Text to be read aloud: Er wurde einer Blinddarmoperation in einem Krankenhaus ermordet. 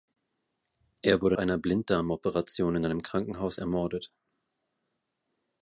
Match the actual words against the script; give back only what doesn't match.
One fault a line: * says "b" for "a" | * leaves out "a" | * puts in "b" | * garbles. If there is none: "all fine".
all fine